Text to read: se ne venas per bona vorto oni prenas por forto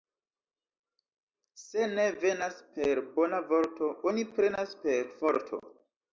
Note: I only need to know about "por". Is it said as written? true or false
false